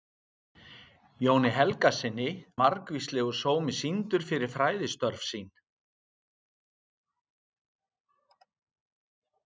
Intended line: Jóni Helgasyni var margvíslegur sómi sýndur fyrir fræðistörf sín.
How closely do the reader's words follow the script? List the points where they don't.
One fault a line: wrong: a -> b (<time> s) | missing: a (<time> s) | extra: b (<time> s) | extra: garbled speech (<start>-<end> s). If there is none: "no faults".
missing: var (2.3 s)